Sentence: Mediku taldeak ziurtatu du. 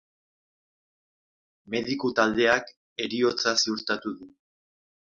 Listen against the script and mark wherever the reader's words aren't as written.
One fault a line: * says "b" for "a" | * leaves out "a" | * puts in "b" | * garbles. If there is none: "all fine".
* puts in "heriotza"